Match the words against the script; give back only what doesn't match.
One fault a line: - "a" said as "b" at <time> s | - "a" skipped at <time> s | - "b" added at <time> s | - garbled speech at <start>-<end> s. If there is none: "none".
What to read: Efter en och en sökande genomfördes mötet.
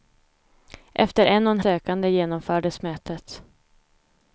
none